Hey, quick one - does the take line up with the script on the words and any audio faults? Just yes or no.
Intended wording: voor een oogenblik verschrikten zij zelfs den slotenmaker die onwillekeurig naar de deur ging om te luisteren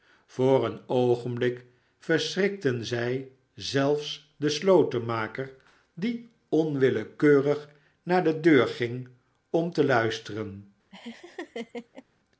no